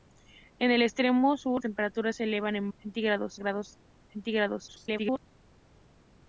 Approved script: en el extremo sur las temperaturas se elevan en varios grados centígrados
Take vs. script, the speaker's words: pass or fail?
fail